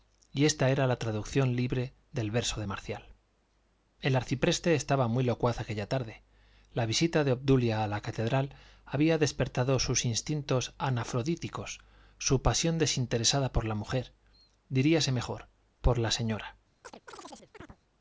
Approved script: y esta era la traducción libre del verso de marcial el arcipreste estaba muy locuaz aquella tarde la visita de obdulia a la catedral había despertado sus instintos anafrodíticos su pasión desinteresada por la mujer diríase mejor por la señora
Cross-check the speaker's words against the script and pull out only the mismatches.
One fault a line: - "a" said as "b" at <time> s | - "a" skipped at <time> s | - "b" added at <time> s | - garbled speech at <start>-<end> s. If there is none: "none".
none